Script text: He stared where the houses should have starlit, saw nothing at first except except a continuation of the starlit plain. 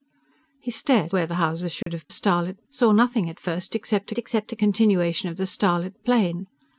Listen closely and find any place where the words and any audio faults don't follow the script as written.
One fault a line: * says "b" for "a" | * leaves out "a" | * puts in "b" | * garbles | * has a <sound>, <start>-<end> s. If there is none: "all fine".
* has a dropout, 1.8-1.9 s